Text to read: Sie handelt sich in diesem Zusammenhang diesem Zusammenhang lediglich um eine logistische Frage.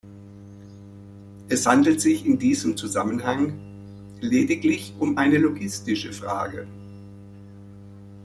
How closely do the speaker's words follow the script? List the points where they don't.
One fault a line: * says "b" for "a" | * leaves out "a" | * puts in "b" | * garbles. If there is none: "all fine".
* says "Es" for "Sie"
* leaves out "diesem Zusammenhang"